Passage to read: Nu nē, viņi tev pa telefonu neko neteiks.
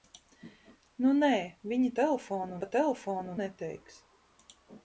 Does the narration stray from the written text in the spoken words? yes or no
yes